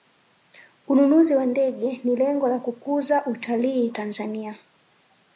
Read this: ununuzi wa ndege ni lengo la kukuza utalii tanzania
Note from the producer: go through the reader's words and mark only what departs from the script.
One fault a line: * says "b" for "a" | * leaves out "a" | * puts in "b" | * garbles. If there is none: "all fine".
all fine